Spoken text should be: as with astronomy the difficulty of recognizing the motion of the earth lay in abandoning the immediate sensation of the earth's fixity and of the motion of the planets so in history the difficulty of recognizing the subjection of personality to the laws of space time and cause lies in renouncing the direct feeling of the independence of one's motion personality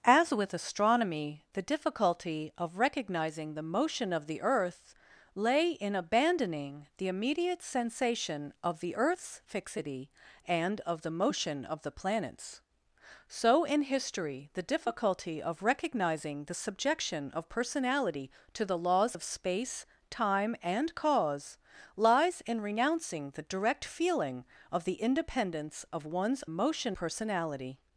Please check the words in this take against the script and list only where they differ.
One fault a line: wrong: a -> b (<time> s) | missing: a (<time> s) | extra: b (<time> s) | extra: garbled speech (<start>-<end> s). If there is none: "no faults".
no faults